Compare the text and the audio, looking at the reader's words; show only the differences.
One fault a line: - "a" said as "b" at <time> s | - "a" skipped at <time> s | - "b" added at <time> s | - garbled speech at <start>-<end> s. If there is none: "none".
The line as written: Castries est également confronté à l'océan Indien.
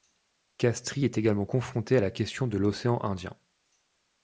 - "la question de" added at 2.0 s